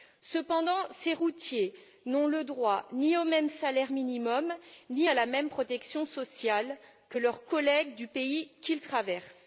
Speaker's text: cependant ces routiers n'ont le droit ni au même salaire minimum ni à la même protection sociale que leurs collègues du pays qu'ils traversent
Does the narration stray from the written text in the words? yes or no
no